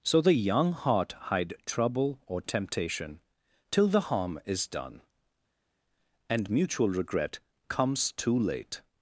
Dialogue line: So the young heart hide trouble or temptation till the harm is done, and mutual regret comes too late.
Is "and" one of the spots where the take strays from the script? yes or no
no